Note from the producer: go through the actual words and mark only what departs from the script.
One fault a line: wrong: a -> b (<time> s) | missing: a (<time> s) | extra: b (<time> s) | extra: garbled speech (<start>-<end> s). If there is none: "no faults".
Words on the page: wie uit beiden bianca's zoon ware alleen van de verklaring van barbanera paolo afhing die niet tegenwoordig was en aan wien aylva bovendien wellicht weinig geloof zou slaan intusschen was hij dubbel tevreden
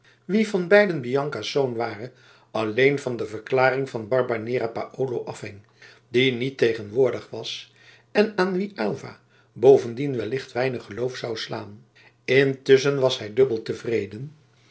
wrong: uit -> van (0.5 s)